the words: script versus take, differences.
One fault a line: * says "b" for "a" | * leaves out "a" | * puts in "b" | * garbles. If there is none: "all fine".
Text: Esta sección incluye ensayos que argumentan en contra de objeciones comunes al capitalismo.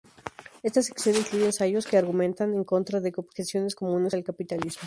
all fine